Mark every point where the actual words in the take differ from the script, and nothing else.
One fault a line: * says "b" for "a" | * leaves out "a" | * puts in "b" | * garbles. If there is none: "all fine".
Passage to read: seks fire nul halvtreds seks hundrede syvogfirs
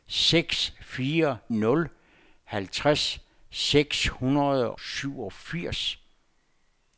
all fine